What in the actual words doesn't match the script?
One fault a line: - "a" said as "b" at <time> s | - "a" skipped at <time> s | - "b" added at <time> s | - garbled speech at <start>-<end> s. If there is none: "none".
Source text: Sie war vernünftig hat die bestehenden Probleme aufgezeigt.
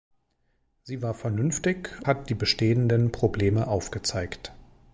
none